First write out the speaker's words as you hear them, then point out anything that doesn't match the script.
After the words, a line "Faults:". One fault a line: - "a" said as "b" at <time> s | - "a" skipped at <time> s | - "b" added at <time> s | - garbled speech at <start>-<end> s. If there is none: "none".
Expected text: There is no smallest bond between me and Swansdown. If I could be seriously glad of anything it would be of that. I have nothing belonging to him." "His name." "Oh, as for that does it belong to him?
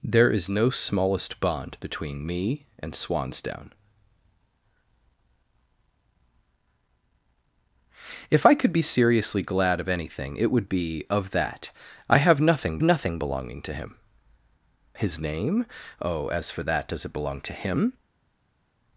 There is no smallest bond between me and Swansdown. If I could be seriously glad of anything it would be of that. I have nothing nothing belonging to him." "His name." "Oh, as for that does it belong to him?
Faults:
- "nothing" added at 12.8 s